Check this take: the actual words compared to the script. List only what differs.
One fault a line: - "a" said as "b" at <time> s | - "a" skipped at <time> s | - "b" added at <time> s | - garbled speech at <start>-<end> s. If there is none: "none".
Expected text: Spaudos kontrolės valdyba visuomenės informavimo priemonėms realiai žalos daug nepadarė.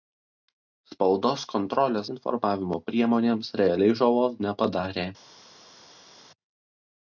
- "valdyba visuomenės" skipped at 2.1 s
- "daug" skipped at 4.4 s